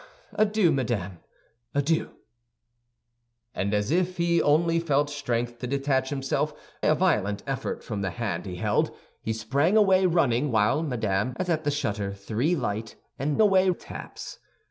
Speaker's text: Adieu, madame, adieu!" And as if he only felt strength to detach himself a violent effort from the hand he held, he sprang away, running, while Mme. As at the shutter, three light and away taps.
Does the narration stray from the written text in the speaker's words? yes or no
no